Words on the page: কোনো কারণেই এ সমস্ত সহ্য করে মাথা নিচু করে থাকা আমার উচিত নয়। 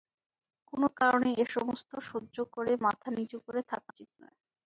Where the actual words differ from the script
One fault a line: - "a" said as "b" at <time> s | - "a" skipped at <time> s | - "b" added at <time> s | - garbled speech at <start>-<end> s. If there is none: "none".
- "আমার" skipped at 3.9 s